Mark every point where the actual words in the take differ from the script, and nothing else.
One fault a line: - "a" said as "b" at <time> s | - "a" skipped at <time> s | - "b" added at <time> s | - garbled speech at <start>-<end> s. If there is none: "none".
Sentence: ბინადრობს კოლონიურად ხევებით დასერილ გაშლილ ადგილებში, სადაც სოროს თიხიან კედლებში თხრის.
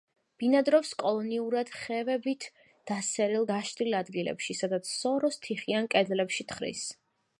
none